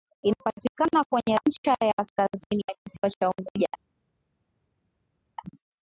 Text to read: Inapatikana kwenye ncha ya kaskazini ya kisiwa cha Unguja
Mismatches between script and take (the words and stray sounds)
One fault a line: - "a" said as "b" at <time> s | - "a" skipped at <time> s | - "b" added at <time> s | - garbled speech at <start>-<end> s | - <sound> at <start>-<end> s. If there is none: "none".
none